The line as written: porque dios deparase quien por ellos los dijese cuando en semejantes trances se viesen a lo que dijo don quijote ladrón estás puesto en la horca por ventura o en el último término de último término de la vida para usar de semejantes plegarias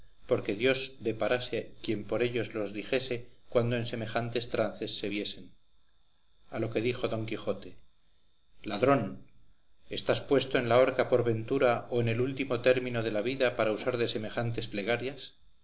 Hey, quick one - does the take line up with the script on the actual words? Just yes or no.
no